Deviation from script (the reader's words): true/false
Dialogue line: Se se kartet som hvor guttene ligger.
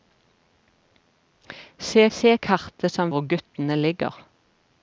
false